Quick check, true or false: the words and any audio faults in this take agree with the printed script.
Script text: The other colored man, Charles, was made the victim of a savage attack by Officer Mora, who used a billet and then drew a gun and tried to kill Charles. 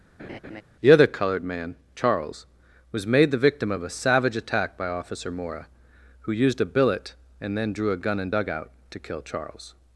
false